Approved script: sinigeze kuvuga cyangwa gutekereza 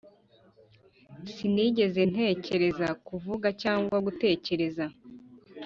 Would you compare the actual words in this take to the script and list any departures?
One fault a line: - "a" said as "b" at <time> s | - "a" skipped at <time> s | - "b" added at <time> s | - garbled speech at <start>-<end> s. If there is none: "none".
- "ntekereza" added at 2.1 s